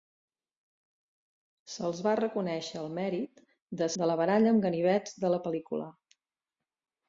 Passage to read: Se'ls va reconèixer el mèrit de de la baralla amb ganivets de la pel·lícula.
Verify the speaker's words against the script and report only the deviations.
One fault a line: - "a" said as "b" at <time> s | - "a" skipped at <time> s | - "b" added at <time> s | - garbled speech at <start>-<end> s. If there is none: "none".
none